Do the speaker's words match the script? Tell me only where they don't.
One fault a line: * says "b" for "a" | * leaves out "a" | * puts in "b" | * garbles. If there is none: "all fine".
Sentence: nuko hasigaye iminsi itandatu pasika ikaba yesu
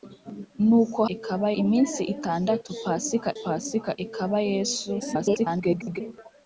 * says "ikaba" for "hasigaye"
* puts in "pasika"
* garbles